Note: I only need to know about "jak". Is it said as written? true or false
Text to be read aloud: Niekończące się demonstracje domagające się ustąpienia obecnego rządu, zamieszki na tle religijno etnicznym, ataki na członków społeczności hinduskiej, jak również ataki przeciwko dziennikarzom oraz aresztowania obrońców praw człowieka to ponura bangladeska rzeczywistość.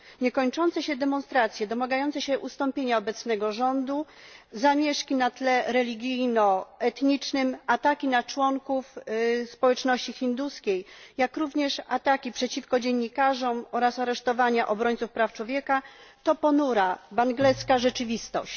true